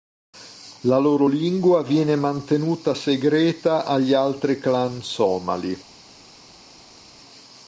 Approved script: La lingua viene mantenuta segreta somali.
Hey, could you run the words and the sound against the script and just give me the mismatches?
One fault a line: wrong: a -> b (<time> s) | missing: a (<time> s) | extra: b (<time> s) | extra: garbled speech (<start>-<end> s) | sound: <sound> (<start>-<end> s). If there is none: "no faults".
extra: loro (1.0 s)
extra: agli altri clan (3.9 s)